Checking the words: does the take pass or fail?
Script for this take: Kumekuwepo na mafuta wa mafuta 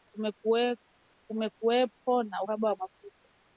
fail